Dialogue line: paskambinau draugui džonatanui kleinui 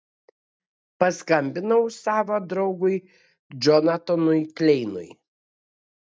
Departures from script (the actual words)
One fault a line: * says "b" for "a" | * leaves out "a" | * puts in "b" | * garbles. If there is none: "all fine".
* puts in "savo"